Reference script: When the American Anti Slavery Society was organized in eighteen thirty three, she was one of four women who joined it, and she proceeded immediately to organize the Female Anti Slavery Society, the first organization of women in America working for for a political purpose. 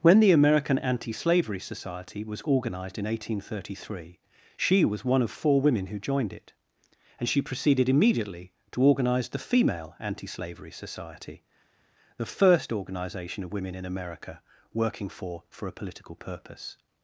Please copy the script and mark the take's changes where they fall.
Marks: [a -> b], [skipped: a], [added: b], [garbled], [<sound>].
When the American Anti Slavery Society was organized in eighteen thirty three, she was one of four women who joined it, and she proceeded immediately to organize the Female Anti Slavery Society, the first organization of women in America working for for a political purpose.